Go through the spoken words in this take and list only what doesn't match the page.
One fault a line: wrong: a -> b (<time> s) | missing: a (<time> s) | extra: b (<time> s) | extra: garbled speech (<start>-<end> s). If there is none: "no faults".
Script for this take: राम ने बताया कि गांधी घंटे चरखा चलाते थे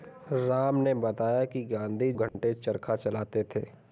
no faults